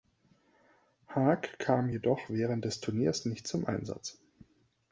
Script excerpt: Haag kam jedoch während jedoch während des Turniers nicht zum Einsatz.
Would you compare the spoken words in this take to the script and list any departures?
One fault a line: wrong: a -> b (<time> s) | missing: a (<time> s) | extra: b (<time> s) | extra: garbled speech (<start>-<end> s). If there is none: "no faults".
missing: jedoch während (2.7 s)